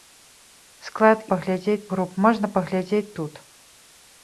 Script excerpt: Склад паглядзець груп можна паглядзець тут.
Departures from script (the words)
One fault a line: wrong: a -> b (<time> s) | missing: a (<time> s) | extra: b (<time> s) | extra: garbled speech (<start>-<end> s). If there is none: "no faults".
no faults